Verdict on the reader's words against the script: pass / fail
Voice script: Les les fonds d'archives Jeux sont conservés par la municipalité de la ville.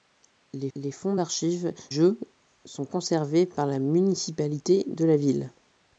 pass